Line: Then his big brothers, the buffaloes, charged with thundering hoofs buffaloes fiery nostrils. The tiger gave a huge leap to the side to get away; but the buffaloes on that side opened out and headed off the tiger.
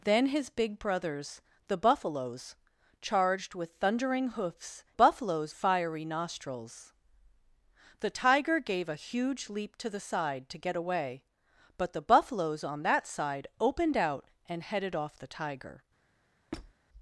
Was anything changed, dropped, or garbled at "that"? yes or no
no